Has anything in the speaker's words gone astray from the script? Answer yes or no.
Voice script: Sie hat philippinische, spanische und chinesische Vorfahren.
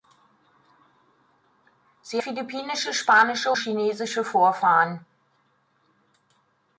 yes